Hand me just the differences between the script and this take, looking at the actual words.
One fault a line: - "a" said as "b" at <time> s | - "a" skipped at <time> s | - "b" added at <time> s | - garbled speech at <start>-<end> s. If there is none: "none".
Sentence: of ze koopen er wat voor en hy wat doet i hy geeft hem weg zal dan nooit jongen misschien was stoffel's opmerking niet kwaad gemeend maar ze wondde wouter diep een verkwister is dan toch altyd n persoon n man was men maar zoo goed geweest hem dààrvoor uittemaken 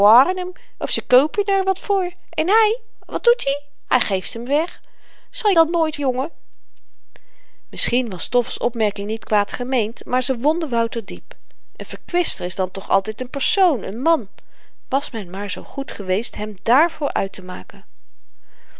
none